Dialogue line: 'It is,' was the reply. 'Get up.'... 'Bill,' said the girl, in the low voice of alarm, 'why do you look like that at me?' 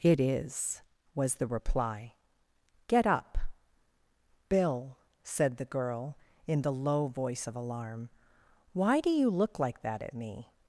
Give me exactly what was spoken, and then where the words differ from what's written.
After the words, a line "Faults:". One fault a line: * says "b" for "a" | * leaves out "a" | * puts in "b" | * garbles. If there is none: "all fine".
'It is,' was the reply. 'Get up.'... 'Bill,' said the girl, in the low voice of alarm, 'why do you look like that at me?'
Faults:
all fine